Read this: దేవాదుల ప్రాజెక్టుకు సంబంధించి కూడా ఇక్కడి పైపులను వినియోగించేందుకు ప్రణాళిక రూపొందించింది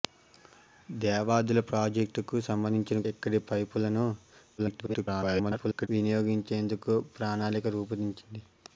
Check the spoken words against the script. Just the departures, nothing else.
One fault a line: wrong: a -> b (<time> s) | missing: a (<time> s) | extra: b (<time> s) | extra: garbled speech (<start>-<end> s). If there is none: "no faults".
missing: కూడా (3.0 s)
extra: garbled speech (4.6-5.9 s)